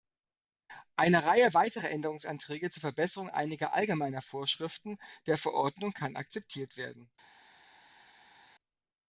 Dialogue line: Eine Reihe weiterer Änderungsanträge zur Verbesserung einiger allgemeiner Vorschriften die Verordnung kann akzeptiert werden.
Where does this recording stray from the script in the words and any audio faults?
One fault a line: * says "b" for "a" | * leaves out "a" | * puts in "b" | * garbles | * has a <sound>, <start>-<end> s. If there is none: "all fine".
* says "der" for "die"